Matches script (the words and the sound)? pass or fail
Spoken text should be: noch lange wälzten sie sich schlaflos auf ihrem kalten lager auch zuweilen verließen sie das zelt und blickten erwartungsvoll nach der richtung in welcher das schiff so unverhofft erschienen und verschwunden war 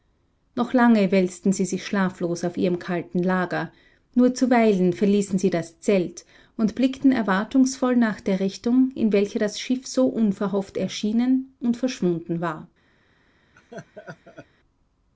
fail